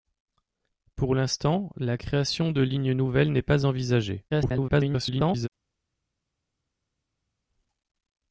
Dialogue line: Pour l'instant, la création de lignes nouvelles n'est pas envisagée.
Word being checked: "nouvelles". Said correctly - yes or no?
yes